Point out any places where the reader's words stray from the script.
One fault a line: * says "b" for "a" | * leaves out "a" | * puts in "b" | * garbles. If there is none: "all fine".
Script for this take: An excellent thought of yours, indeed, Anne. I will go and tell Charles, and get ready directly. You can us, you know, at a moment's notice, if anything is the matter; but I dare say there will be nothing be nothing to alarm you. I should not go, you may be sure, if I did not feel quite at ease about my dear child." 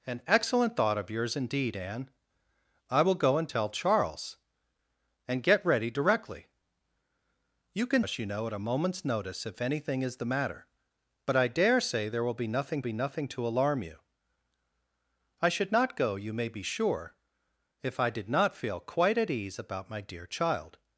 all fine